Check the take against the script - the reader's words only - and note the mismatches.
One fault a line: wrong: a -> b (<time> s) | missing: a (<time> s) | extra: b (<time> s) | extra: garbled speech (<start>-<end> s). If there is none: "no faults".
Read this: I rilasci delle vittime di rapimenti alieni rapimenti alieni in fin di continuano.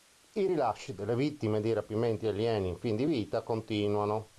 missing: rapimenti alieni (2.7 s)
extra: vita (3.0 s)